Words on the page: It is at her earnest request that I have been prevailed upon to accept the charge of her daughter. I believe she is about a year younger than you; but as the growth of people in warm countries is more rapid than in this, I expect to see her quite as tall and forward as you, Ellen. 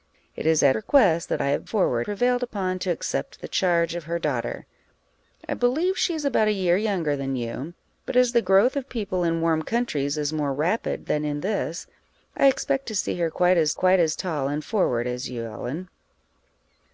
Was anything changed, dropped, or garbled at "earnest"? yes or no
yes